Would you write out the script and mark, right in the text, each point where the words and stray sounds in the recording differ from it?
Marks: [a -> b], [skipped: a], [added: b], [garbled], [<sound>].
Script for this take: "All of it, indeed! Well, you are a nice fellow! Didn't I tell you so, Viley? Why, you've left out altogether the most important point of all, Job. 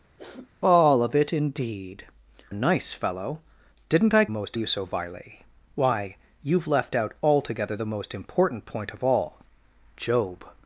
[sniff] "All of it, indeed! [skipped: Well, you are] a nice fellow! Didn't I [tell -> most] you so, Viley? Why, you've left out altogether the most important point of all, Job.